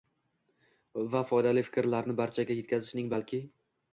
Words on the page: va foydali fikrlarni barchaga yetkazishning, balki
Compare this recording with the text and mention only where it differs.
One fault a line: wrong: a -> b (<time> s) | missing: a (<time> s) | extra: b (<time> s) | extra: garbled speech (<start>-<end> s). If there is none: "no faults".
no faults